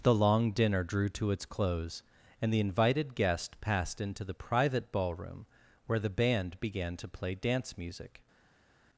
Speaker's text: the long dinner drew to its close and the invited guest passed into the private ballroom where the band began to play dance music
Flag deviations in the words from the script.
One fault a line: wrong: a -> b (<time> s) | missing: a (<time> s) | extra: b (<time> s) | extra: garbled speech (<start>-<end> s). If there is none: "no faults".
no faults